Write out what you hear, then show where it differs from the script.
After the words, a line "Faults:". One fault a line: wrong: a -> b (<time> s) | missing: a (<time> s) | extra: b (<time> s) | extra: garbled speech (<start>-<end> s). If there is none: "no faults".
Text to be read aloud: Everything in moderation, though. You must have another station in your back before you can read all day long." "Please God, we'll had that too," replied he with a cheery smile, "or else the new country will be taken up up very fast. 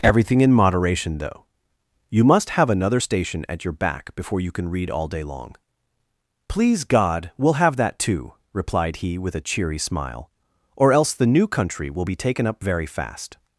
Everything in moderation, though. You must have another station at your back before you can read all day long." "Please God, we'll have that too," replied he with a cheery smile, "or else the new country will be taken up very fast.
Faults:
wrong: in -> at (3.5 s)
wrong: had -> have (7.6 s)
missing: up (12.6 s)